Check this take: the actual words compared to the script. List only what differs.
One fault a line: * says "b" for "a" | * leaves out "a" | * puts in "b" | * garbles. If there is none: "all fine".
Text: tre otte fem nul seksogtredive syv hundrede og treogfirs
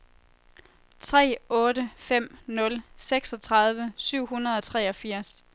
all fine